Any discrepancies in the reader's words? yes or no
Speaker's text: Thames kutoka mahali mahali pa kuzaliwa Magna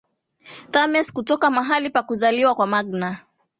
yes